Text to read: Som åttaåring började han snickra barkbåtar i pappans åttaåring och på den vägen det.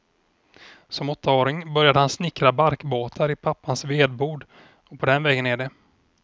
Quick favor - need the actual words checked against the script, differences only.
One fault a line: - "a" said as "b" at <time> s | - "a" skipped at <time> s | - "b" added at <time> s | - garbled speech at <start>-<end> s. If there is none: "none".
- "åttaåring" said as "vedbod" at 3.9 s
- "är" added at 5.5 s